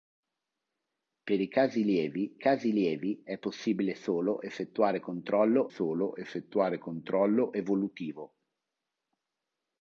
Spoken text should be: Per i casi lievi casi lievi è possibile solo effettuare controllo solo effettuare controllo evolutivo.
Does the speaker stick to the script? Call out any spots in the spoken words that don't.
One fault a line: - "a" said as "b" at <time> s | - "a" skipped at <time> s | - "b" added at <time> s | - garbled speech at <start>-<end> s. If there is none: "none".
none